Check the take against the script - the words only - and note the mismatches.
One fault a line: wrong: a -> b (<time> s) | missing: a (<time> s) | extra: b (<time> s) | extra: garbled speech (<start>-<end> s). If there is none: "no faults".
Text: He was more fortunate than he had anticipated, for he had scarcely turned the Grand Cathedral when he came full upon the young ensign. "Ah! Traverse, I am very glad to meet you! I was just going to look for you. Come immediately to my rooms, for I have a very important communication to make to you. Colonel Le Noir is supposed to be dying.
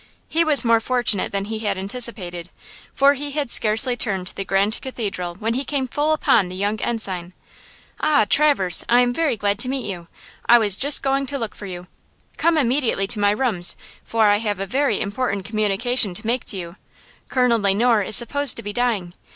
no faults